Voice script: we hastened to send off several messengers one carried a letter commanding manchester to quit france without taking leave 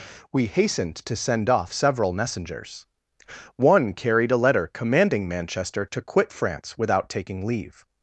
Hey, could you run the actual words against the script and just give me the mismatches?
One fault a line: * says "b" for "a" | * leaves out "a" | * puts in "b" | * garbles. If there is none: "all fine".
all fine